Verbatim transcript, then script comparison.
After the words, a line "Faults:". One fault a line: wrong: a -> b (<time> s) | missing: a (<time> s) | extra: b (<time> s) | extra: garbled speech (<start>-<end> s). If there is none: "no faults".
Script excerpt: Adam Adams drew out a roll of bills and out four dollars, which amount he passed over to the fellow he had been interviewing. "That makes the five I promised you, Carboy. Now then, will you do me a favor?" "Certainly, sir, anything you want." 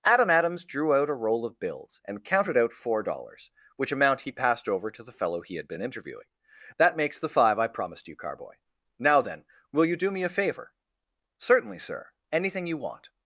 Adam Adams drew out a roll of bills and counted out four dollars, which amount he passed over to the fellow he had been interviewing. "That makes the five I promised you, Carboy. Now then, will you do me a favor?" "Certainly, sir, anything you want."
Faults:
extra: counted (2.2 s)